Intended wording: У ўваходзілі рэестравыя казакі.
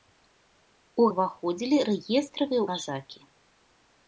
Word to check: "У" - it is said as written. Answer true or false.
true